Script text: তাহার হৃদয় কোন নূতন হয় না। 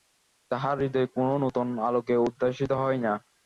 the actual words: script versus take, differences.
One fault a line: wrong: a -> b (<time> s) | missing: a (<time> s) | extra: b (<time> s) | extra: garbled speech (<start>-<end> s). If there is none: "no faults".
extra: আলোকে উদ্ভাসিত (1.9 s)